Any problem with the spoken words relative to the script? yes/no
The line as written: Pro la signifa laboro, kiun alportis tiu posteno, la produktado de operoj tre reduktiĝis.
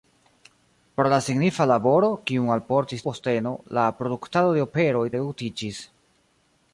yes